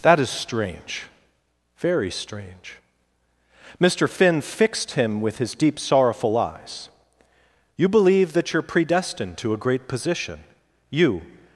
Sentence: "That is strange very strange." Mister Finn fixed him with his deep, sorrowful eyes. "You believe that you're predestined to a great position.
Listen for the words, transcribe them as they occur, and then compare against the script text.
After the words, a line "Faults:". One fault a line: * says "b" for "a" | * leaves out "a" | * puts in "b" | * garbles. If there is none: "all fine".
"That is strange very strange." Mister Finn fixed him with his deep, sorrowful eyes. "You believe that you're predestined to a great position. You
Faults:
* puts in "You"